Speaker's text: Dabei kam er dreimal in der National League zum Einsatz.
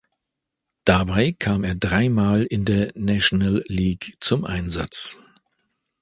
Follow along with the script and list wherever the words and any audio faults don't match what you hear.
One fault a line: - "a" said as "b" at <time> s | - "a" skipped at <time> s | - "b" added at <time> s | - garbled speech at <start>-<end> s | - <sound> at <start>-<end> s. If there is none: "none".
none